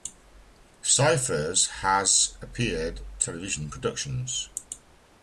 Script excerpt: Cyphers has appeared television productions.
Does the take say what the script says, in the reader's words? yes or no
yes